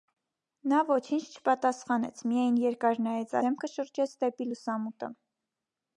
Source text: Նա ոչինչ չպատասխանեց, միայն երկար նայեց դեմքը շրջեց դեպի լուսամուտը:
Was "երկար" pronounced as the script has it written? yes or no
yes